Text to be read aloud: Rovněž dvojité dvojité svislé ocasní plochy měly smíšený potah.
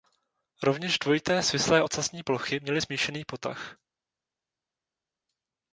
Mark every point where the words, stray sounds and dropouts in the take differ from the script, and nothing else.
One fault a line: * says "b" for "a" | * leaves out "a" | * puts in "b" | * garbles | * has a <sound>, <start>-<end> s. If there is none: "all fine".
* leaves out "dvojité"